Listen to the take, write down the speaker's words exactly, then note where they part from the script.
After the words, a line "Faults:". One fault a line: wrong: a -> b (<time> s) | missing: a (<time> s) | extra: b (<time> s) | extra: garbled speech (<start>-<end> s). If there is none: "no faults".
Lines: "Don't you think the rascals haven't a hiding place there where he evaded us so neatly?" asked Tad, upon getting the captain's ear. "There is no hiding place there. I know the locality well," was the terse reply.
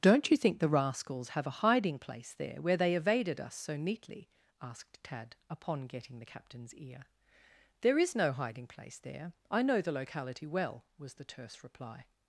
"Don't you think the rascals have a hiding place there where they evaded us so neatly?" asked Tad, upon getting the captain's ear. "There is no hiding place there. I know the locality well," was the terse reply.
Faults:
wrong: haven't -> have (1.3 s)
wrong: he -> they (2.8 s)